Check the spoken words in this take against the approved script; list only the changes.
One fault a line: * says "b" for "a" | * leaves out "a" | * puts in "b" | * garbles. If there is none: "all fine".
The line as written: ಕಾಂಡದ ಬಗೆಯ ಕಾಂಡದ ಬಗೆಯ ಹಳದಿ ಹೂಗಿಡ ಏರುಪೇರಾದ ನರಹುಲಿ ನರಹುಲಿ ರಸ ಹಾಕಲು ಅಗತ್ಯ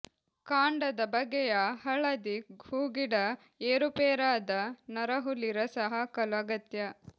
* leaves out "ಕಾಂಡದ ಬಗೆಯ"
* leaves out "ನರಹುಲಿ"